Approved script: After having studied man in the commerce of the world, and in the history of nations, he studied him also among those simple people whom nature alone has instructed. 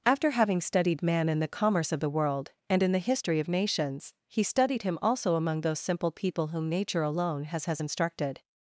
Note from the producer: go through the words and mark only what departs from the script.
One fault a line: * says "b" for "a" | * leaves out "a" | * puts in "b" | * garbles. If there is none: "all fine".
* puts in "has"